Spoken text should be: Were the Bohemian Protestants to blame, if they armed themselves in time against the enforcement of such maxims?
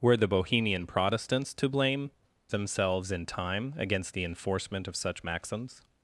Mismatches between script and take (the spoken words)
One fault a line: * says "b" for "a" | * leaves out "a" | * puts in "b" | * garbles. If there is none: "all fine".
* leaves out "if they armed"